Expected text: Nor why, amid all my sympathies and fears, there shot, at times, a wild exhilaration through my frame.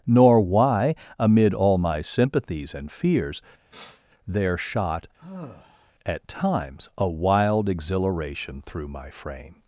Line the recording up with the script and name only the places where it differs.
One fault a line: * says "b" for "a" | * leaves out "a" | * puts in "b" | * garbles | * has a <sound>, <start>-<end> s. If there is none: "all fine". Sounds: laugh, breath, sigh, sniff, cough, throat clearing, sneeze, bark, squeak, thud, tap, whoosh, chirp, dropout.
* has a sniff, 3.7-4.0 s
* has a sigh, 5.2-5.9 s